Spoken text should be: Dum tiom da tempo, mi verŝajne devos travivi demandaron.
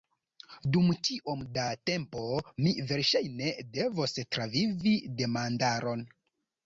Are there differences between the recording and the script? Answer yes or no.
no